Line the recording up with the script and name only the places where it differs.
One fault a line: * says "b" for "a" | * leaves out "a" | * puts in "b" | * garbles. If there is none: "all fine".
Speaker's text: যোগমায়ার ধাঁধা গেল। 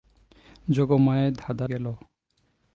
all fine